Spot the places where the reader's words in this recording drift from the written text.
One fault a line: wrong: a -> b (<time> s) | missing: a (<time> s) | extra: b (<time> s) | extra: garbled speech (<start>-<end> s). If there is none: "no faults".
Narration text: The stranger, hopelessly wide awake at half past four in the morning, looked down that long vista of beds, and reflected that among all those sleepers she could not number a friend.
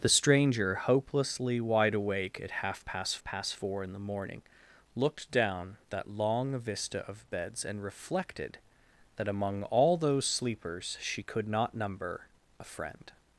extra: past (3.2 s)